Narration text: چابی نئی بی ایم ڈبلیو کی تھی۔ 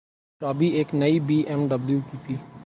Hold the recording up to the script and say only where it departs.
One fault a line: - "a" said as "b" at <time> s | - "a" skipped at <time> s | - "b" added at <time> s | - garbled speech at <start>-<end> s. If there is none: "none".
- "ایک" added at 0.8 s